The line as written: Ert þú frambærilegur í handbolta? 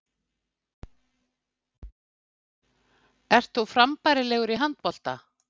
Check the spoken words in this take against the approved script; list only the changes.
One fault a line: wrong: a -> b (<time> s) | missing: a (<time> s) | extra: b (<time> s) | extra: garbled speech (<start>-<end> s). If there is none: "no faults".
no faults